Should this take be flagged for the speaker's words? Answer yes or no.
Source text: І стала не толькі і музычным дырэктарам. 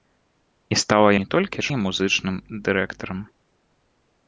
no